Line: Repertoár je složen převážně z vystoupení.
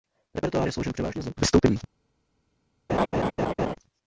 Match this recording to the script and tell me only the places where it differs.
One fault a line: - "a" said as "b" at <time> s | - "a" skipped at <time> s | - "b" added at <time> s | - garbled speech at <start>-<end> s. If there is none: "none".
none